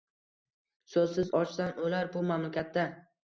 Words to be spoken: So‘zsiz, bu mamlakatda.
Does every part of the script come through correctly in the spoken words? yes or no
no